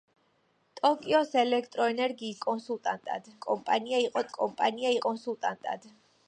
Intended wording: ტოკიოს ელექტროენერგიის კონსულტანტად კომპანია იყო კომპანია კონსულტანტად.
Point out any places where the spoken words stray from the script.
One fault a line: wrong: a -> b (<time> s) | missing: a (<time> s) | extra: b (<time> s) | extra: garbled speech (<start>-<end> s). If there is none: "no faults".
no faults